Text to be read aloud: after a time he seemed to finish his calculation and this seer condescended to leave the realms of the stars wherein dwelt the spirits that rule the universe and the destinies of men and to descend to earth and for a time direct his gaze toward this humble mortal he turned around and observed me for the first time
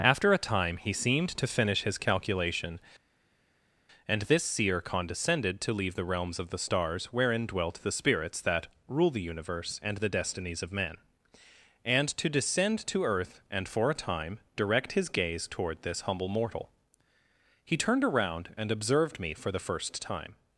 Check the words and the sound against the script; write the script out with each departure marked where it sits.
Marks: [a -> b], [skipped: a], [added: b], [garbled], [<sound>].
after a time he seemed to finish his calculation and this seer condescended to leave the realms of the stars wherein dwelt the spirits that rule the universe and the destinies of men and to descend to earth and for a time direct his gaze toward this humble mortal he turned around and observed me for the first time